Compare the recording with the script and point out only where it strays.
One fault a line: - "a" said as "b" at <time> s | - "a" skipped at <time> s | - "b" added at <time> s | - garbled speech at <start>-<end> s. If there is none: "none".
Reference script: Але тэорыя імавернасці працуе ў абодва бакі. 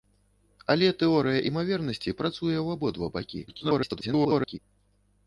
- garbled speech at 3.5-4.6 s